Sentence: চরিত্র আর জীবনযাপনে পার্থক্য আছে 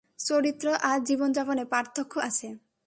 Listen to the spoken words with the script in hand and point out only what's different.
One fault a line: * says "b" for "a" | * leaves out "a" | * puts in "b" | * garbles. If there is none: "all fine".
all fine